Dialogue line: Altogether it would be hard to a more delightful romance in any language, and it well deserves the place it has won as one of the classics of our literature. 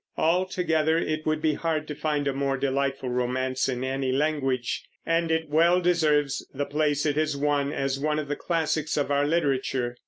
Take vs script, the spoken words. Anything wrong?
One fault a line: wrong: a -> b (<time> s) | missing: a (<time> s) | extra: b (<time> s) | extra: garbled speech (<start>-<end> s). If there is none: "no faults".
extra: find (1.9 s)